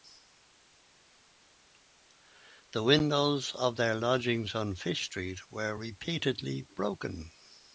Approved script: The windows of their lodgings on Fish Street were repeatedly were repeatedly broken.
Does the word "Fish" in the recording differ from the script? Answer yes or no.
no